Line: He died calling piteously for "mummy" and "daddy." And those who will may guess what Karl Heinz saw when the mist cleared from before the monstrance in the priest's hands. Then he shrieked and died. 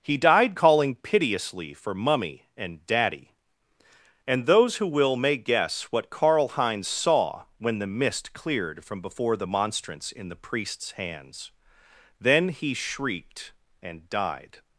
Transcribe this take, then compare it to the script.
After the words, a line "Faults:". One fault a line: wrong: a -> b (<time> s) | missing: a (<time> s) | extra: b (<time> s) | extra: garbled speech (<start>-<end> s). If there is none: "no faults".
He died calling piteously for "mummy" and "daddy." And those who will may guess what Karl Heinz saw when the mist cleared from before the monstrance in the priest's hands. Then he shrieked and died.
Faults:
no faults